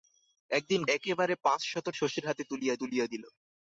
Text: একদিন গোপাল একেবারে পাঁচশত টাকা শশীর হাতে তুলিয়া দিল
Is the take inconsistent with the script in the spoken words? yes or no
yes